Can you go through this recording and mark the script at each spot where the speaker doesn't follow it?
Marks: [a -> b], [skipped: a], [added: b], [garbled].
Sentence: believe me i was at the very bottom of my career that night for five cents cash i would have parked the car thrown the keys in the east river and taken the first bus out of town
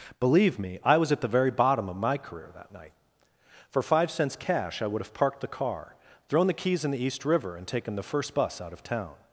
believe me i was at the very bottom of my career that night for five cents cash i would have parked the car thrown the keys in the east river and taken the first bus out of town